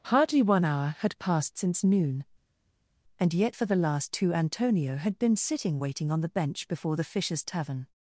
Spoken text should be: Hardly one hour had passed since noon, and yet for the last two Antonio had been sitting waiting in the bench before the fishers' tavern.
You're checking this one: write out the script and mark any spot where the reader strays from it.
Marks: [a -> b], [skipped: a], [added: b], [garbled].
Hardly one hour had passed since noon, and yet for the last two Antonio had been sitting waiting [in -> on] the bench before the fishers' tavern.